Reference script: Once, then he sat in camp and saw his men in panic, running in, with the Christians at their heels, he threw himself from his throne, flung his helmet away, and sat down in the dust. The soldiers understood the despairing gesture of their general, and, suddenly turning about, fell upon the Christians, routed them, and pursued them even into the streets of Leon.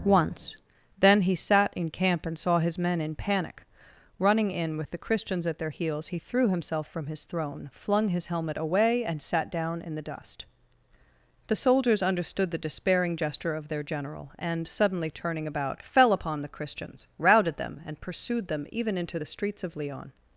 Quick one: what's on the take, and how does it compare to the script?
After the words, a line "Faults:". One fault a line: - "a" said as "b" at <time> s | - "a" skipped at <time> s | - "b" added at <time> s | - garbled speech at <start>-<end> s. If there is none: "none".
Once, then he sat in camp and saw his men in panic, running in, with the Christians at their heels, he threw himself from his throne, flung his helmet away, and sat down in the dust. The soldiers understood the despairing gesture of their general, and, suddenly turning about, fell upon the Christians, routed them, and pursued them even into the streets of Leon.
Faults:
none